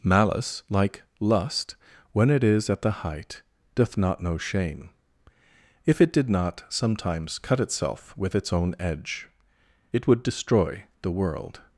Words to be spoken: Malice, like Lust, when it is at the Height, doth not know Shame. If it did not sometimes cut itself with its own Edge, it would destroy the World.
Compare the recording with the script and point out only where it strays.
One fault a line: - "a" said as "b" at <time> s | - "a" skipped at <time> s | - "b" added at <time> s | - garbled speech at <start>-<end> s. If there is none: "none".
none